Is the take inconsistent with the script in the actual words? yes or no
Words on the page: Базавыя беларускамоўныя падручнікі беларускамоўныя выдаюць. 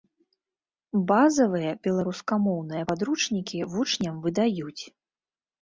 yes